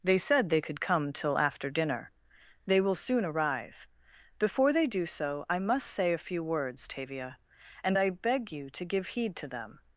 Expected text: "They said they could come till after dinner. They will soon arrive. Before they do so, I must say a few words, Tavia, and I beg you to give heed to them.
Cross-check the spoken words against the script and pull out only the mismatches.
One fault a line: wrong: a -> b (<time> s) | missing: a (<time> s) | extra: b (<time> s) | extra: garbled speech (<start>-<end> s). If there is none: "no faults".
no faults